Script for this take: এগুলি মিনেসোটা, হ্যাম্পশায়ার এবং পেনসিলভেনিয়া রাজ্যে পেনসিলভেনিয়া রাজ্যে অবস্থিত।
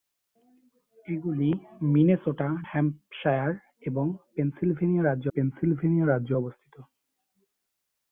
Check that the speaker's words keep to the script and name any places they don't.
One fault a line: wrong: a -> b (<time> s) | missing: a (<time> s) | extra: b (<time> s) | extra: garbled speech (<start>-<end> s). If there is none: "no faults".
no faults